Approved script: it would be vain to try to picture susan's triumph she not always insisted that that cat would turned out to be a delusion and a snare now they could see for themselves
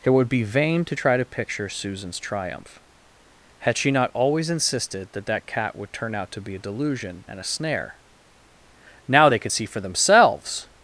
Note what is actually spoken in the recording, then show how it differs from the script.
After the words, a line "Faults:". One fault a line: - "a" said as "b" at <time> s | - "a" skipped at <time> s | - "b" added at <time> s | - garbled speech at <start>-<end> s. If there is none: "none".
it would be vain to try to picture susan's triumph had she not always insisted that that cat would turn out to be a delusion and a snare now they could see for themselves
Faults:
- "had" added at 3.6 s
- "turned" said as "turn" at 5.9 s